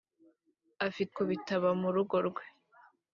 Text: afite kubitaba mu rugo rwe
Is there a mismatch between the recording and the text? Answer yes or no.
no